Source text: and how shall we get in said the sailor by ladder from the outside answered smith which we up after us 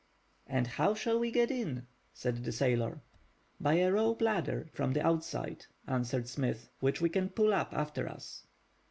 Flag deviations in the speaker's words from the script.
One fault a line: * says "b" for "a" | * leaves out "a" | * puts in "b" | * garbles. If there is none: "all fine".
* puts in "a rope"
* puts in "can pull"